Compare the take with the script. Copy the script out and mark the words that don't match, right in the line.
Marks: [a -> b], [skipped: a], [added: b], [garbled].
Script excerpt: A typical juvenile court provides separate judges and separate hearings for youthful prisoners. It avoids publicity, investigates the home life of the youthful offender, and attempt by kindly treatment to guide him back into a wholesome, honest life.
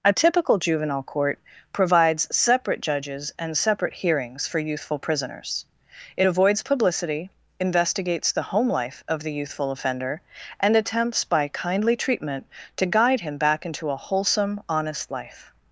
A typical juvenile court provides separate judges and separate hearings for youthful prisoners. It avoids publicity, investigates the home life of the youthful offender, and [attempt -> attempts] by kindly treatment to guide him back into a wholesome, honest life.